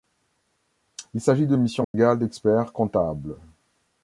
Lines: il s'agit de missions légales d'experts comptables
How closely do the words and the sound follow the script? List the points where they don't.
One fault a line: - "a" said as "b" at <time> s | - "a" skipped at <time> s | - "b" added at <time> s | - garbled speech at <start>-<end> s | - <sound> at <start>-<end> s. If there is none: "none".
- dropout at 1.8-1.9 s